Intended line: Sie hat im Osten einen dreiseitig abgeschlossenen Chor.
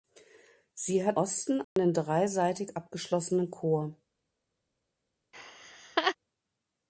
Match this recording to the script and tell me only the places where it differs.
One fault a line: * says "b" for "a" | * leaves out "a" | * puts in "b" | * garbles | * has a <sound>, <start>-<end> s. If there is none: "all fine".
* leaves out "im"
* has a dropout, 1.6-1.8 s
* has a laugh, 5.3-6.2 s